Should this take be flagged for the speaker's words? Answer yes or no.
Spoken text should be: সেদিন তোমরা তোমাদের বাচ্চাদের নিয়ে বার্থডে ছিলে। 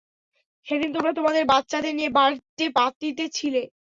yes